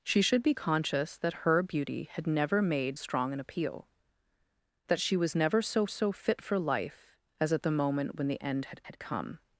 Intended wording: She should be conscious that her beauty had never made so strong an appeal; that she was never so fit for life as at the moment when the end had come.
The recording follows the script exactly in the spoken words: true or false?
false